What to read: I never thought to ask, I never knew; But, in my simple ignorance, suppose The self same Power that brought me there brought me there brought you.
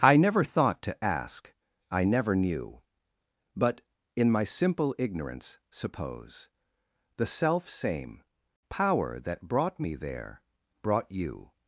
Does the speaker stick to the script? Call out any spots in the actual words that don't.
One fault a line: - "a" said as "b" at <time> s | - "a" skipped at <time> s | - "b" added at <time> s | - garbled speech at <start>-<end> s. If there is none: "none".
- "me there brought" skipped at 11.1 s